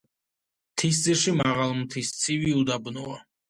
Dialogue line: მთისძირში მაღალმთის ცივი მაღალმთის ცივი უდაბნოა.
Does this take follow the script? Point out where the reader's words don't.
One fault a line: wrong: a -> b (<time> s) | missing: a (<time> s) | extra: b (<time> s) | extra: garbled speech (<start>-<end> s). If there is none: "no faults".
missing: მაღალმთის ცივი (2.6 s)